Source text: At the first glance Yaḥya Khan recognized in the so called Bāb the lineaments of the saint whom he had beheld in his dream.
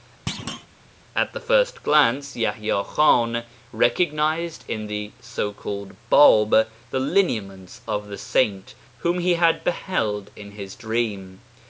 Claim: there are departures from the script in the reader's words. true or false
false